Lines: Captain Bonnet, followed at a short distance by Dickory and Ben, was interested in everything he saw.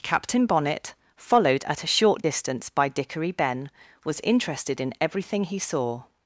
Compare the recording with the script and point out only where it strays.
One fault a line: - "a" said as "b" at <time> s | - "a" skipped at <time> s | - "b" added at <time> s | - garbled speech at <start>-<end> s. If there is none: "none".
- "and" skipped at 3.3 s